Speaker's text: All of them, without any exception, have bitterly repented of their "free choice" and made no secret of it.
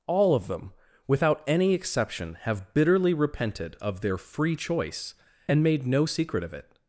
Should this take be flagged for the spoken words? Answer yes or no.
no